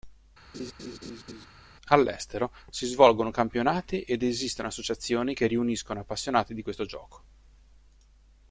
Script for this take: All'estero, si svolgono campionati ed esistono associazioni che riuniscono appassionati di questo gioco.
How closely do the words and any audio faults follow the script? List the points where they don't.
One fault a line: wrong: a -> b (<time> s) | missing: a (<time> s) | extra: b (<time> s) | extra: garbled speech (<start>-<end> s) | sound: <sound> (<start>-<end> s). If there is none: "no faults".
sound: laugh (0.5-1.5 s)